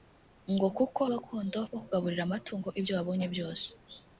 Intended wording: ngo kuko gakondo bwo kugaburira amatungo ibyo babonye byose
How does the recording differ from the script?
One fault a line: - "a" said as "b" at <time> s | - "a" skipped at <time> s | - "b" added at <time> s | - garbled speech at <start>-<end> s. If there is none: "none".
none